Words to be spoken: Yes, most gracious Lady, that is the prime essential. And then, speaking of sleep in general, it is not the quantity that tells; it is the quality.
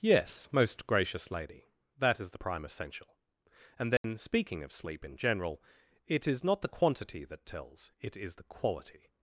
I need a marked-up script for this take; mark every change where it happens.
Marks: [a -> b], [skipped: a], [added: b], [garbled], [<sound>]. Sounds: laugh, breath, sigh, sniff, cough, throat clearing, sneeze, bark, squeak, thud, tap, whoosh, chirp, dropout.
Yes, most gracious Lady, that is the prime essential. And then, [dropout] speaking of sleep in general, it is not the quantity that tells; it is the quality.